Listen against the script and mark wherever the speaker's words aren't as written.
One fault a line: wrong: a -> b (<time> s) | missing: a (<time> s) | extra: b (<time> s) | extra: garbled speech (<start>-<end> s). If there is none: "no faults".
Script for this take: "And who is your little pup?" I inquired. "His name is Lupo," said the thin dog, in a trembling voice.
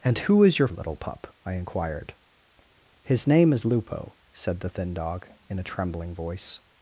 no faults